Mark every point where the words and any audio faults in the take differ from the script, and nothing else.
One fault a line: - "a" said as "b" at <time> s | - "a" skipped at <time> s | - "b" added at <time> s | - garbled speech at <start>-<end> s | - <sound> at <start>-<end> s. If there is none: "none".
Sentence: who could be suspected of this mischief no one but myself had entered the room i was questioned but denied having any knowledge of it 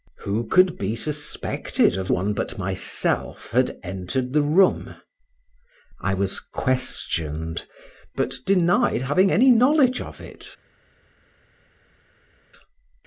- "this mischief no" skipped at 2.1 s